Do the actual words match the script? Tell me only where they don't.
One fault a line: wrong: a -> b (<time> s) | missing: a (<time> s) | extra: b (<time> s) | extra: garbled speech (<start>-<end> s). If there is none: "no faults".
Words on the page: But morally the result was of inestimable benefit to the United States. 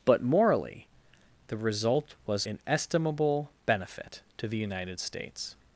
missing: of (2.5 s)